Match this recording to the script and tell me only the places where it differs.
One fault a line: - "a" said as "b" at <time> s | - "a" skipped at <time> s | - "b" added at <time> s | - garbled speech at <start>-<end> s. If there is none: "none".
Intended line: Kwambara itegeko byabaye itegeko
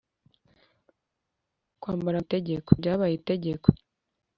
none